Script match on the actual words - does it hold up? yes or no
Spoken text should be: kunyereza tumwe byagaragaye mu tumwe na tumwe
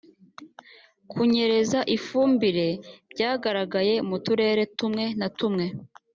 no